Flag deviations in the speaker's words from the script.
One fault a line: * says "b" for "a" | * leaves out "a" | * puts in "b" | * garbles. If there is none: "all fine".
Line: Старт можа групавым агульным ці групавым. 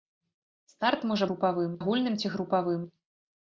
all fine